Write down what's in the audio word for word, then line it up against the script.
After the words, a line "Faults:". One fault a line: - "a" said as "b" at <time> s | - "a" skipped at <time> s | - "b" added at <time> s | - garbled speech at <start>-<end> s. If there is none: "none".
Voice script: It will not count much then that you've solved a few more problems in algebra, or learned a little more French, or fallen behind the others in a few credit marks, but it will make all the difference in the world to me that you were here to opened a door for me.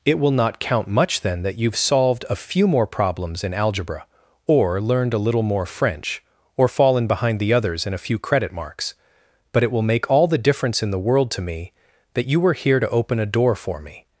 It will not count much then that you've solved a few more problems in algebra, or learned a little more French, or fallen behind the others in a few credit marks, but it will make all the difference in the world to me that you were here to open a door for me.
Faults:
- "opened" said as "open" at 12.9 s